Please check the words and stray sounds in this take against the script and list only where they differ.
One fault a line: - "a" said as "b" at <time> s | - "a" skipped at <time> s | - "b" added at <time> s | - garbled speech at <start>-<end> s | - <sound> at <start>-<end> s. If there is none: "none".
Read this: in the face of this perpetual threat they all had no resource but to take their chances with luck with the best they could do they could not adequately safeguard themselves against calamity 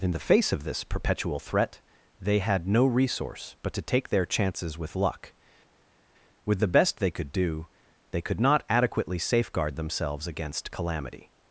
- "all" skipped at 2.4 s